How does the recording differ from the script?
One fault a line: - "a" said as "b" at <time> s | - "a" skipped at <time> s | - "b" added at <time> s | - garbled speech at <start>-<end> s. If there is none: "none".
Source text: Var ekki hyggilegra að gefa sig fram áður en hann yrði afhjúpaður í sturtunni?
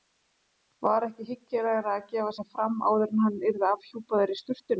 none